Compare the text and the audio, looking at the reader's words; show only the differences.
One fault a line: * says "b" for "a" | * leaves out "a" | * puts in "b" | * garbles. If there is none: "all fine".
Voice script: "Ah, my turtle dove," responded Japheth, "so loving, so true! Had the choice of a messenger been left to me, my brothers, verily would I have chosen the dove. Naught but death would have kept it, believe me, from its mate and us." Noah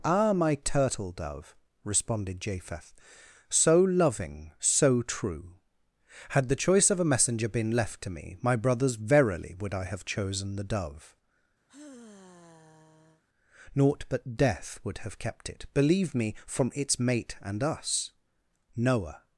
all fine